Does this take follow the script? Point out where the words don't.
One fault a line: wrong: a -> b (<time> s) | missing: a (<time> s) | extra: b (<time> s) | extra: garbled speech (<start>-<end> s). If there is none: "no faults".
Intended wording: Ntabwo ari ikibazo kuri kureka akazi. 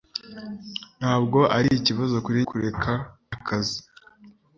no faults